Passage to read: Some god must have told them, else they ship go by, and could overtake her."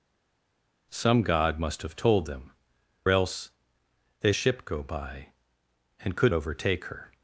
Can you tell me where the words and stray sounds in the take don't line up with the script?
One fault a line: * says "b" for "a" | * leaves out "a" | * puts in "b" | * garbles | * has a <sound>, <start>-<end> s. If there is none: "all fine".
all fine